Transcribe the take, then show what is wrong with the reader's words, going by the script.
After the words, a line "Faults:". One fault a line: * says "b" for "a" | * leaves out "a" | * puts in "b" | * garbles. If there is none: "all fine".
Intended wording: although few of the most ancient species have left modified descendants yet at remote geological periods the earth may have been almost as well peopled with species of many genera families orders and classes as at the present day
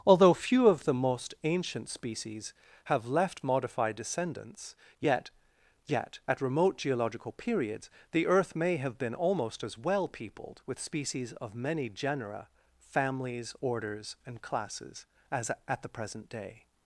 although few of the most ancient species have left modified descendants yet yet at remote geological periods the earth may have been almost as well peopled with species of many genera families orders and classes as at the present day
Faults:
* puts in "yet"